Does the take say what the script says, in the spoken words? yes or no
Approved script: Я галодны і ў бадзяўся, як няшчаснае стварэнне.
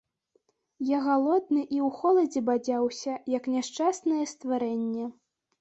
no